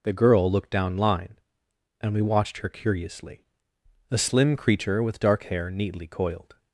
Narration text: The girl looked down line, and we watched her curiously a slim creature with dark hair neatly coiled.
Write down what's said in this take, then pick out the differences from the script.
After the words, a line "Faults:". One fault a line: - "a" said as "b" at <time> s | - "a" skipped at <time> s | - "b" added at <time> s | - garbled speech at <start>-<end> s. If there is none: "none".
The girl looked down line, and we watched her curiously a slim creature with dark hair neatly coiled.
Faults:
none